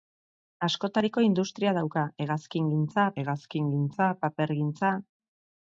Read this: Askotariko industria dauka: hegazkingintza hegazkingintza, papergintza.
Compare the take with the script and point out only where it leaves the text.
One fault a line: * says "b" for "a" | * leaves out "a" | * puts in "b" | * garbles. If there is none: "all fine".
all fine